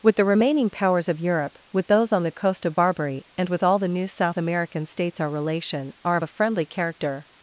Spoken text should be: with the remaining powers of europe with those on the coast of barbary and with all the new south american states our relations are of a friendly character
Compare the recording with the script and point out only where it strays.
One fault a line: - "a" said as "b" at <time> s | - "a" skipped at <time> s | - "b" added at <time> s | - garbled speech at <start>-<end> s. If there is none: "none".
- "relations" said as "relation" at 5.3 s